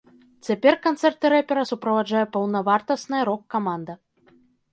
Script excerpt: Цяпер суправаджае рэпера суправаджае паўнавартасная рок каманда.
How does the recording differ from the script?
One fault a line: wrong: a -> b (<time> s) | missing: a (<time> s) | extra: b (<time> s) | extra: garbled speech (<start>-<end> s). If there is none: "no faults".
wrong: суправаджае -> канцэрты (0.8 s)